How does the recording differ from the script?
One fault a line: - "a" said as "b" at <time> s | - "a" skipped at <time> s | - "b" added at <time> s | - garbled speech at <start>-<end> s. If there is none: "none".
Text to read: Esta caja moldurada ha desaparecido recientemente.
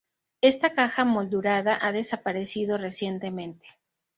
none